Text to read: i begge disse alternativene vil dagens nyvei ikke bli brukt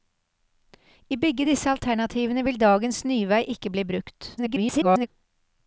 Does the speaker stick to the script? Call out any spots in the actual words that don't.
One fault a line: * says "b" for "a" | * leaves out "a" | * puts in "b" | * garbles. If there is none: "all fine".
* garbles